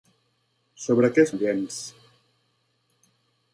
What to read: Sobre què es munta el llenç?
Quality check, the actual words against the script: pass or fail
fail